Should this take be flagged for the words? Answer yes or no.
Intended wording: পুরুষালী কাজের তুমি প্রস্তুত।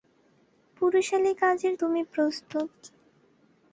no